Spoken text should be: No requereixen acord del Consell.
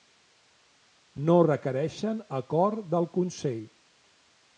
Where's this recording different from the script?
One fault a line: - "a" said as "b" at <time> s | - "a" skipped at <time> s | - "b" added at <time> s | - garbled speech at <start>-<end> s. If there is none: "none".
none